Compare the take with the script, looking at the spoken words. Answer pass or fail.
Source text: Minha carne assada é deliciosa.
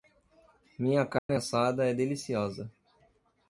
pass